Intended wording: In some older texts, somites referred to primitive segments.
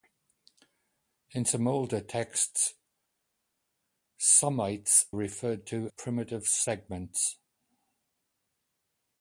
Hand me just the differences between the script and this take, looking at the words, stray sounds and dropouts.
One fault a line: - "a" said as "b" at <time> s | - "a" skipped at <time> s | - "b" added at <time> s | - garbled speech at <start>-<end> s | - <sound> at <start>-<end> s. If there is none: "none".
none